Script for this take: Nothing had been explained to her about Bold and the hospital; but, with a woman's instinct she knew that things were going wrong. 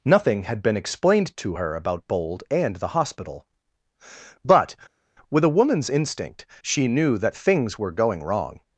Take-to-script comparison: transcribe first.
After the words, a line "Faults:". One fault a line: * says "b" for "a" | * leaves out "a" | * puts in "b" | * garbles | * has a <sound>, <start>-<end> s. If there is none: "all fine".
Nothing had been explained to her about Bold and the hospital; but, with a woman's instinct she knew that things were going wrong.
Faults:
all fine